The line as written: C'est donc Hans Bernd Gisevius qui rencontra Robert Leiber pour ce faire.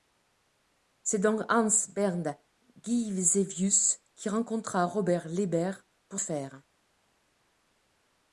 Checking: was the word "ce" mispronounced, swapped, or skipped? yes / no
yes